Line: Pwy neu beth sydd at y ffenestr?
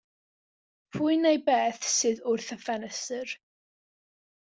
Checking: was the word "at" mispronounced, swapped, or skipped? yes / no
yes